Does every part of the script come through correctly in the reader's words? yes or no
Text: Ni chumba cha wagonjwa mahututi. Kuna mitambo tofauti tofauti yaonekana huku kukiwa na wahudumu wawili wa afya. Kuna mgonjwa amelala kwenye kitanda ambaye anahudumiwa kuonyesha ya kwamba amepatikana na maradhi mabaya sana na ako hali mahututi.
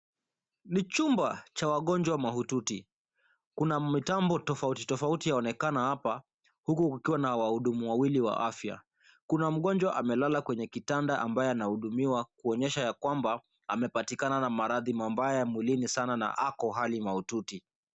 no